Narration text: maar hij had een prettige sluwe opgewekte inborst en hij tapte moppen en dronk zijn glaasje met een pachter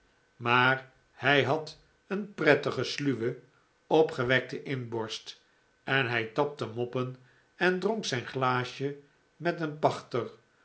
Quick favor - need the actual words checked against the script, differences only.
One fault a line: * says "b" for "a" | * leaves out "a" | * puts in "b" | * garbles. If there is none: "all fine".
all fine